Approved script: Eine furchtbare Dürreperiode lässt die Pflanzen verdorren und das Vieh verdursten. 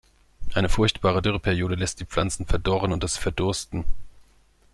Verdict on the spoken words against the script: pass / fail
fail